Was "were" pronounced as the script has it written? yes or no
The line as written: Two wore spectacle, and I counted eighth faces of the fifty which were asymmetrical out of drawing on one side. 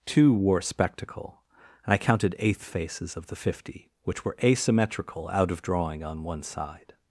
yes